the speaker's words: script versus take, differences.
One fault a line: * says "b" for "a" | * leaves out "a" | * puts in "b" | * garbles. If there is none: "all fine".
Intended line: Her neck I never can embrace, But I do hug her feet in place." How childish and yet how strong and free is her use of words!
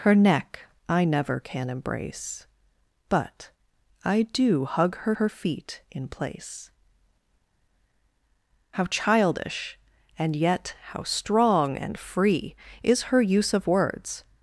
* puts in "her"